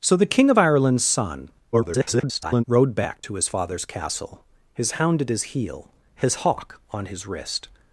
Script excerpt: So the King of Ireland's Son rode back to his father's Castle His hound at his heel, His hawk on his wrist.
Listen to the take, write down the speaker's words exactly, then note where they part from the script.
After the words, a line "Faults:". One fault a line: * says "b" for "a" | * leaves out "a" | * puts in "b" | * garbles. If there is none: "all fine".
So the King of Ireland's Son [garbled] rode back to his father's Castle His hound at his heel, His hawk on his wrist.
Faults:
* garbles